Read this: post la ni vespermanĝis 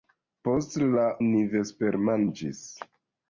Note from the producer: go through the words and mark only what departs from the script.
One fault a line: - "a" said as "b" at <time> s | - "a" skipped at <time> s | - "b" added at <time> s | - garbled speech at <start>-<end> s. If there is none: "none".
none